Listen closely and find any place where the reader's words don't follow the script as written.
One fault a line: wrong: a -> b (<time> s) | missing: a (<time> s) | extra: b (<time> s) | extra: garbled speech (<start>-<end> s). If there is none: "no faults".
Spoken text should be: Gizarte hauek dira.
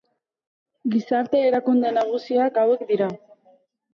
extra: erakunde nagusiak (1.5 s)